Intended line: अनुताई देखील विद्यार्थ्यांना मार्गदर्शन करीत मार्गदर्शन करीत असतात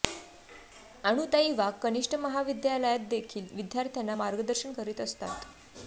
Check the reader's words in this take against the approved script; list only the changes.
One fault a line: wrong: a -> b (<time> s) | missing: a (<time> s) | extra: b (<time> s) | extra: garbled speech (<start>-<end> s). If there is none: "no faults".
extra: वाघ कनिष्ठ महाविद्यालयात (1.5 s)
missing: मार्गदर्शन करीत (5.0 s)